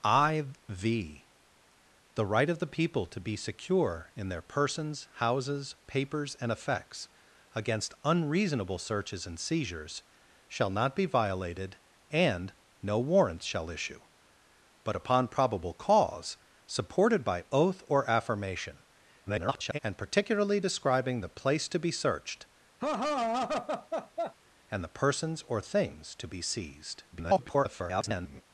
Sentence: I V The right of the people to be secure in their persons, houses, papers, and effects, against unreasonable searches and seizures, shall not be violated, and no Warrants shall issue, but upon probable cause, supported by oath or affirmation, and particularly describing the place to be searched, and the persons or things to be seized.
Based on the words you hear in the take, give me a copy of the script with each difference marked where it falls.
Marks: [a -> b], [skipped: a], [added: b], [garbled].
I V The right of the people to be secure in their persons, houses, papers, and effects, against unreasonable searches and seizures, shall not be violated, and no Warrants shall issue, but upon probable cause, supported by oath or affirmation, [garbled] and particularly describing the place to be searched, and the persons or things to be seized. [garbled]